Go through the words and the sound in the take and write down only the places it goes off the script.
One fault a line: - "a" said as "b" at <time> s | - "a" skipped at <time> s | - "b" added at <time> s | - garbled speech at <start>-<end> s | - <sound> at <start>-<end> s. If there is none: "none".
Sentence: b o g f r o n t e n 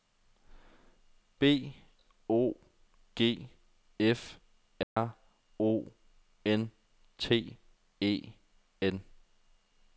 - dropout at 4.8-5.0 s